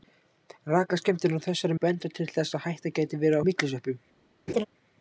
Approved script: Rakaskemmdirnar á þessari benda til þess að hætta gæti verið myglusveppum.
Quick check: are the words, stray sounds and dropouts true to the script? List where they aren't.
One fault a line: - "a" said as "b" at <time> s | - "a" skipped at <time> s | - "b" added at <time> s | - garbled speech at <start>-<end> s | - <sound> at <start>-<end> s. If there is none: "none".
- laugh at 4.5-4.7 s